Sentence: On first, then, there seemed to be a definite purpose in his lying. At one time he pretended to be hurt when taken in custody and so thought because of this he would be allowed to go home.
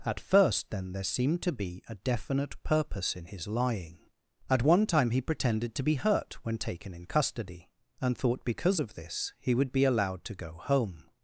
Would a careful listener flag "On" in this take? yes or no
yes